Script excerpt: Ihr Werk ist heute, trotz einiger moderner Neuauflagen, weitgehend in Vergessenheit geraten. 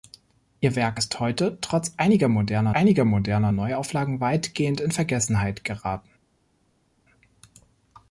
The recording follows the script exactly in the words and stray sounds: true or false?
false